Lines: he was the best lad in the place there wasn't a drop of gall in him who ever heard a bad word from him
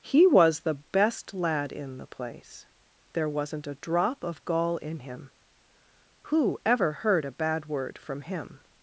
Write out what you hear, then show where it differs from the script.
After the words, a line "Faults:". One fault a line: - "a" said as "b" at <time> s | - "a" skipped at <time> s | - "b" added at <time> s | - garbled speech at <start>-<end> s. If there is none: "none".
he was the best lad in the place there wasn't a drop of gall in him who ever heard a bad word from him
Faults:
none